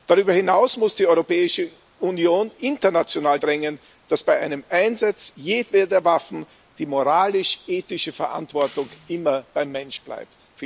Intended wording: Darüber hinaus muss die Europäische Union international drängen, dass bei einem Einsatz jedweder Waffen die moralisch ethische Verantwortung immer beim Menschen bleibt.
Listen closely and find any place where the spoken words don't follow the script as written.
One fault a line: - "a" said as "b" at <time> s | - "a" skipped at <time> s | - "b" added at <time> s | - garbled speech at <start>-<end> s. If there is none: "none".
none